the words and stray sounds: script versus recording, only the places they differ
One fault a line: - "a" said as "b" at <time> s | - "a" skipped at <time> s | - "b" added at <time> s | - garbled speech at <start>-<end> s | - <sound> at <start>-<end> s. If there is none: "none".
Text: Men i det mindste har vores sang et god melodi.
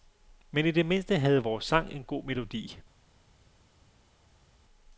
- "har" said as "havde" at 1.2 s
- "et" said as "en" at 1.9 s